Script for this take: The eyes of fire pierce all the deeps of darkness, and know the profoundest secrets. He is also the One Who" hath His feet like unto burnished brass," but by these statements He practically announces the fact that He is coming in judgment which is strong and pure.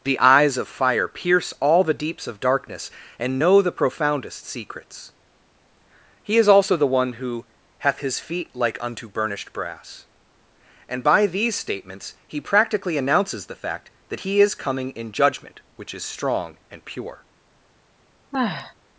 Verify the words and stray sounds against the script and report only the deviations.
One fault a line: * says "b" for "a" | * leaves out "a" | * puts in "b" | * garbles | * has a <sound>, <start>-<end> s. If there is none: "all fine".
* says "and" for "but"
* has a sigh, 18.3-18.7 s